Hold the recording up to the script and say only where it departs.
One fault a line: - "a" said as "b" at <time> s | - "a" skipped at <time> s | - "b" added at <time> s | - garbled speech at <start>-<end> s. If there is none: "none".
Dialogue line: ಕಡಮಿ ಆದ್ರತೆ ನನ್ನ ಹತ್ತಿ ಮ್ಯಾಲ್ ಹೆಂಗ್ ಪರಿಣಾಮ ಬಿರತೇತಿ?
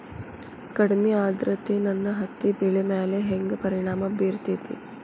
- "ಬೆಳಿ" added at 2.6 s